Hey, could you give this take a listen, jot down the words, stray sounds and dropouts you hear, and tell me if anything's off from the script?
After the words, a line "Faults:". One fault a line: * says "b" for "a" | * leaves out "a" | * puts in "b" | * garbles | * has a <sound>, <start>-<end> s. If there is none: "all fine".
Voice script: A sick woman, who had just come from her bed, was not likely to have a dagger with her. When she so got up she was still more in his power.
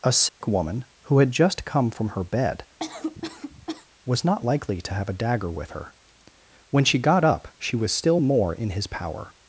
A sick woman, who had just come from her bed, was not likely to have a dagger with her. When she got up she was still more in his power.
Faults:
* has a dropout, 0.3-0.4 s
* has a cough, 2.8-3.9 s
* leaves out "so"